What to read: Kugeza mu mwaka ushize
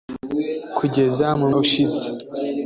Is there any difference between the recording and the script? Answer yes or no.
yes